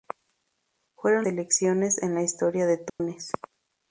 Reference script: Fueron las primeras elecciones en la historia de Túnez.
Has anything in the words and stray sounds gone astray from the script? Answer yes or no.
yes